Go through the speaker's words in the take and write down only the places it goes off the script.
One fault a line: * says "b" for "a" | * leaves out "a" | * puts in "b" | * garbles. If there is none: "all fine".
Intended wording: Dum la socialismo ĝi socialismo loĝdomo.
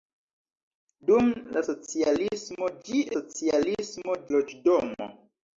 all fine